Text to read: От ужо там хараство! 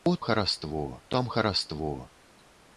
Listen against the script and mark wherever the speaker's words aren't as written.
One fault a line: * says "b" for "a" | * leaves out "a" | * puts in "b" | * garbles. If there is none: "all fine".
* says "хараство" for "ужо"